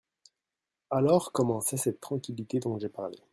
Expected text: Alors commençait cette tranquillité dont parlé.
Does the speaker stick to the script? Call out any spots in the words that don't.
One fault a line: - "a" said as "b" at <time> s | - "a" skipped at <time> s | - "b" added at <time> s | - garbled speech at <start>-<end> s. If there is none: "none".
- "j'ai" added at 2.8 s